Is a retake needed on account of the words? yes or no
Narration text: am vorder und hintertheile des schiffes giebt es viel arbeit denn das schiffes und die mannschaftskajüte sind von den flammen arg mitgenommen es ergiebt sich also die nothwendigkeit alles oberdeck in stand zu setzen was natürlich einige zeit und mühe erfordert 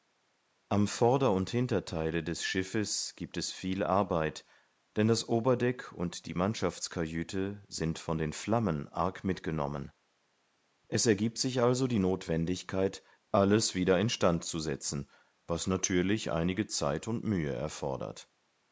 yes